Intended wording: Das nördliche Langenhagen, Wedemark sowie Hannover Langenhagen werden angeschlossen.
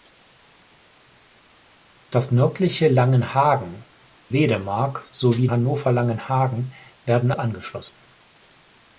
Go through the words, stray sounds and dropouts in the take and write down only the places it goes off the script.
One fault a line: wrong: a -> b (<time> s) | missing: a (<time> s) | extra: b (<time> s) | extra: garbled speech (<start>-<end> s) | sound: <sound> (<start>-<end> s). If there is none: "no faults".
no faults